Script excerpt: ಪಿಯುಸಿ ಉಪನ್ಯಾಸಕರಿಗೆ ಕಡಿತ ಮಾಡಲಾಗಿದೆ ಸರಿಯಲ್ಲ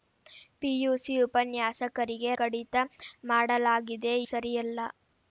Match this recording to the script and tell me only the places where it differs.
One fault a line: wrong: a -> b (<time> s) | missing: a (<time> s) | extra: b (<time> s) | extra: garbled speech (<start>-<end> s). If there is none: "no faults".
no faults